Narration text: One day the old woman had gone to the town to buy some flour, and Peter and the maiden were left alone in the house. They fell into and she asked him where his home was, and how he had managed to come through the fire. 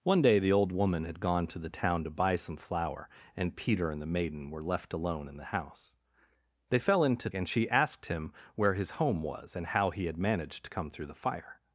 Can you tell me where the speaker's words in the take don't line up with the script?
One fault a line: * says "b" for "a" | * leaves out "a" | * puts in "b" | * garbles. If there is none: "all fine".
all fine